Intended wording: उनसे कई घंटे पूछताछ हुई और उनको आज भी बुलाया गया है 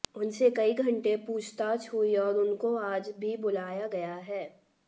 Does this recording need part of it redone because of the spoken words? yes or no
no